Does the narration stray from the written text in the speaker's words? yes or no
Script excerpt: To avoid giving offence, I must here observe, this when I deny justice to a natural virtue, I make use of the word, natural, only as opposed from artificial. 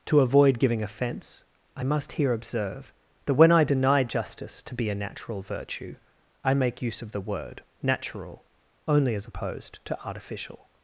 yes